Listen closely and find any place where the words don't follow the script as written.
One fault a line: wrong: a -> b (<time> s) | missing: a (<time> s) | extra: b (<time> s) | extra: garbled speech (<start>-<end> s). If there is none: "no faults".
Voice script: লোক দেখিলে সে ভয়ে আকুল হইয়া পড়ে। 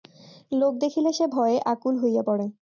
no faults